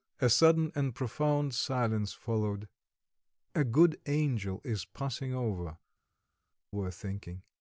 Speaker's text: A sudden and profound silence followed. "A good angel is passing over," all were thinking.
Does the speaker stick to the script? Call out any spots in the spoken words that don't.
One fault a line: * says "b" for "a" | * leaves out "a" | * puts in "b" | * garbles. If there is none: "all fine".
* leaves out "all"